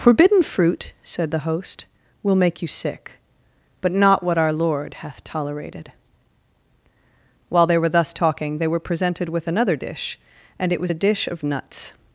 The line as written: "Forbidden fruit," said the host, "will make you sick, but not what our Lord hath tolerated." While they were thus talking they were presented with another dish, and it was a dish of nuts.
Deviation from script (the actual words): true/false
false